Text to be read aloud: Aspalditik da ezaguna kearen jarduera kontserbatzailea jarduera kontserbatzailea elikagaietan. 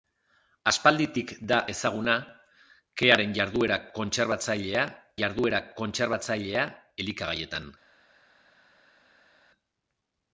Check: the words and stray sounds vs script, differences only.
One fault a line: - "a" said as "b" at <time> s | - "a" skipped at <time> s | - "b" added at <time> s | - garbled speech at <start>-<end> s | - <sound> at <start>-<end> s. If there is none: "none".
none